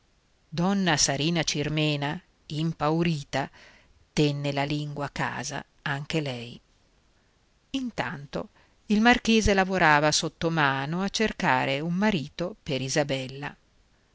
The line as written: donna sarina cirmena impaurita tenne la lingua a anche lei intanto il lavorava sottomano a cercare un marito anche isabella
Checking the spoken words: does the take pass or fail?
fail